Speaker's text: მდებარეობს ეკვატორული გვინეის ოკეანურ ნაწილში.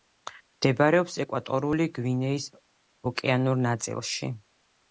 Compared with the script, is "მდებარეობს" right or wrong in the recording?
right